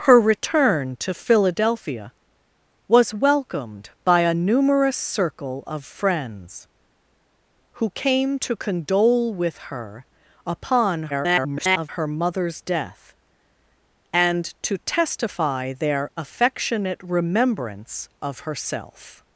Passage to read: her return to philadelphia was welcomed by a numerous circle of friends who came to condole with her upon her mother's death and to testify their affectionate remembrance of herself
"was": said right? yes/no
yes